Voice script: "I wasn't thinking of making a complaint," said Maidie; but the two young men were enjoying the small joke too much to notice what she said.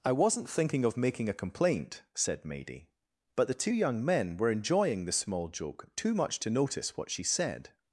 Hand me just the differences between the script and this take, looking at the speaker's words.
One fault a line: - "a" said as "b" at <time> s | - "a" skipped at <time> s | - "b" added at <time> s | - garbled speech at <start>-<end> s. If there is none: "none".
none